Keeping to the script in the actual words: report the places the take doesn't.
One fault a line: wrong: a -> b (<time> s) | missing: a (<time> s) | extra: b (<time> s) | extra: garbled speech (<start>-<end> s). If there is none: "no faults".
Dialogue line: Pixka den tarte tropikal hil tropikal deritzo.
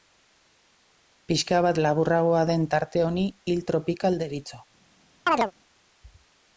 extra: bat laburragoa (1.6 s)
wrong: tropikal -> honi (3.1 s)